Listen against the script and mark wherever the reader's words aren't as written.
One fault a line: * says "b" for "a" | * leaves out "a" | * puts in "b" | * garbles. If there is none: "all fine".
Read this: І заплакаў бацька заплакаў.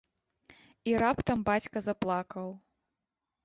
* says "раптам" for "заплакаў"